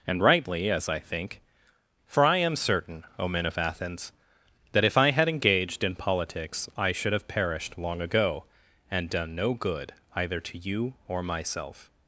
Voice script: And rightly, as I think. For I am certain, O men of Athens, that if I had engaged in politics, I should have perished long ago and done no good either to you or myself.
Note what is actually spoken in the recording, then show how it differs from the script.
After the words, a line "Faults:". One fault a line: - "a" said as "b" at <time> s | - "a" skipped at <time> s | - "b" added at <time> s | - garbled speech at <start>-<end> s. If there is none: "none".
And rightly, as I think. For I am certain, O men of Athens, that if I had engaged in politics, I should have perished long ago and done no good either to you or myself.
Faults:
none